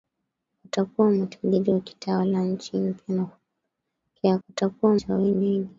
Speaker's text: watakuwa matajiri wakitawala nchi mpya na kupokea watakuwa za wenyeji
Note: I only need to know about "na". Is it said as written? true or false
true